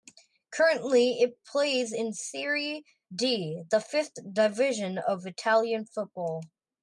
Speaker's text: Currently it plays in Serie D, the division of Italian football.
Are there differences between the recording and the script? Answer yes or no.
yes